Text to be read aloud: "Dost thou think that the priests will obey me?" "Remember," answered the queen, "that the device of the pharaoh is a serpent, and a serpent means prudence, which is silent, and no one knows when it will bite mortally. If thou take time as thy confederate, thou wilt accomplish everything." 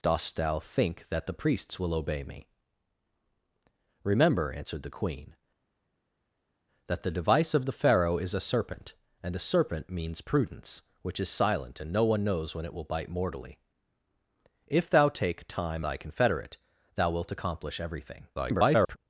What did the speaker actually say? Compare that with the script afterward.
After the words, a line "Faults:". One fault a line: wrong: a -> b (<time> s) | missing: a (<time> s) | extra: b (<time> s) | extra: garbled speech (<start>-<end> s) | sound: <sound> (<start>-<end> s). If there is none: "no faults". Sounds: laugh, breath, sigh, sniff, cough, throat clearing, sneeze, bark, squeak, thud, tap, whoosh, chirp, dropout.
"Dost thou think that the priests will obey me?" "Remember," answered the queen, "that the device of the pharaoh is a serpent, and a serpent means prudence, which is silent, and no one knows when it will bite mortally. If thou take time thy confederate, thou wilt accomplish everything." [garbled]
Faults:
missing: as (15.9 s)
extra: garbled speech (18.3-19.0 s)